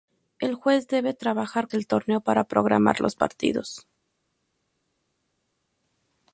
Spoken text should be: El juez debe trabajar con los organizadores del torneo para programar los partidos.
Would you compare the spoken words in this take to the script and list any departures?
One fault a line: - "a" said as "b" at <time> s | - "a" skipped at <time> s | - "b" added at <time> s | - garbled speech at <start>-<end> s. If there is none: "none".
- "con los organizadores" skipped at 1.7 s